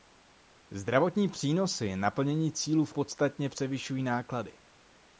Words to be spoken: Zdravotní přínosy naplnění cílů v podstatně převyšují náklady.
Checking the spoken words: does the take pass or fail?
pass